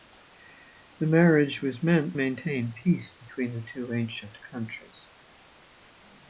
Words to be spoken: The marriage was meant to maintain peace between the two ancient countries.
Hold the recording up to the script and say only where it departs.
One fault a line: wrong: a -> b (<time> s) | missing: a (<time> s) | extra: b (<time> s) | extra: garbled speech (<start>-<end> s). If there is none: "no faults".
missing: to (2.2 s)